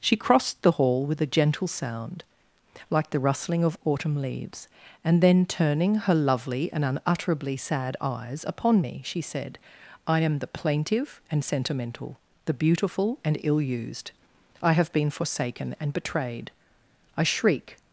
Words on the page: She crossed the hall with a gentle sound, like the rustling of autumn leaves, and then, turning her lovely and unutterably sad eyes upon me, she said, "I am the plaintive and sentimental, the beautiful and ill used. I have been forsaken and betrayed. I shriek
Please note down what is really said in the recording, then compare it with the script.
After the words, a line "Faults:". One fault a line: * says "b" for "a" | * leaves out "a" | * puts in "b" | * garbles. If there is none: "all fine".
She crossed the hall with a gentle sound, like the rustling of autumn leaves, and then, turning her lovely and unutterably sad eyes upon me, she said, "I am the plaintive and sentimental, the beautiful and ill used. I have been forsaken and betrayed. I shriek
Faults:
all fine